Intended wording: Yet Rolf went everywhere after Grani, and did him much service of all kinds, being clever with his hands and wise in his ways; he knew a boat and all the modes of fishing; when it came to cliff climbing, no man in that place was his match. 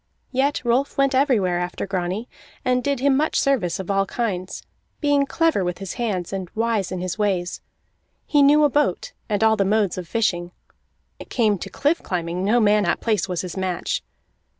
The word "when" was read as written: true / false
false